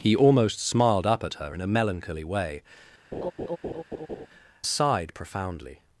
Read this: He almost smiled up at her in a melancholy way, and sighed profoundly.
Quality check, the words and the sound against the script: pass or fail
fail